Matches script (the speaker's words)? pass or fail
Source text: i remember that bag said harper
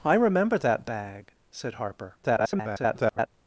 fail